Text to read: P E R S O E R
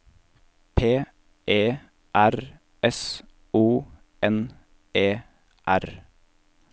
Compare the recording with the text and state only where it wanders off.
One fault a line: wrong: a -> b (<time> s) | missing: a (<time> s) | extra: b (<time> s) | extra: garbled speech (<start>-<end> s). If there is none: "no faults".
extra: N (4.2 s)